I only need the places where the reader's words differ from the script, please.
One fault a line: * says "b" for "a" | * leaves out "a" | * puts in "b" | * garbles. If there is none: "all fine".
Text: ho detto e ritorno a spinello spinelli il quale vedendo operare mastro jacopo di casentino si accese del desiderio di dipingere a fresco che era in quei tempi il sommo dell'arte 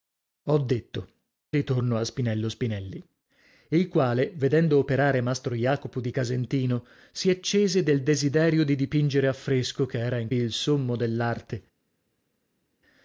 * leaves out "e"
* leaves out "quei tempi"